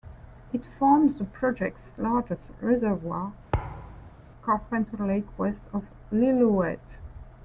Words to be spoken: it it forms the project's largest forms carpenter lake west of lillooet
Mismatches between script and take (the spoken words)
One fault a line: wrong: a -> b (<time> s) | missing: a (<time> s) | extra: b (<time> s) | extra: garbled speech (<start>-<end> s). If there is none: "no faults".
missing: it (0.7 s)
wrong: forms -> reservoir (2.6 s)